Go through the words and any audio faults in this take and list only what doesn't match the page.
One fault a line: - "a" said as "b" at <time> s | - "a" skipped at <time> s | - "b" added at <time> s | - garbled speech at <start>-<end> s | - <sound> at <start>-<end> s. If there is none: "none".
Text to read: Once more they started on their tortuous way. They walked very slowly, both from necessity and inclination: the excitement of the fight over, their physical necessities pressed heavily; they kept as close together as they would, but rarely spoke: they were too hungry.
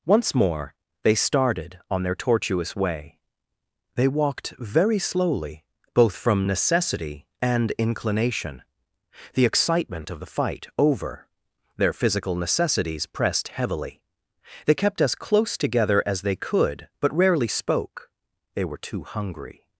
- "would" said as "could" at 16.4 s